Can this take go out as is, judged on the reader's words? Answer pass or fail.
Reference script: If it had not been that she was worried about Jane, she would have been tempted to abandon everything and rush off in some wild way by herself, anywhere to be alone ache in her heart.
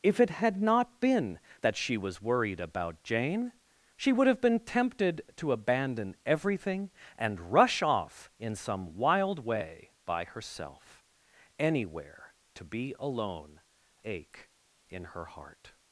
pass